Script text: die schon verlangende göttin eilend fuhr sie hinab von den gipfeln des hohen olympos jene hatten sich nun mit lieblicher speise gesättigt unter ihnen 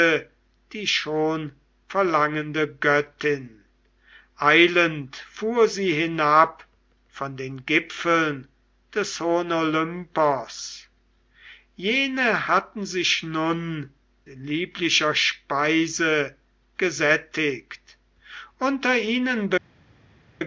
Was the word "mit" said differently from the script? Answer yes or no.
yes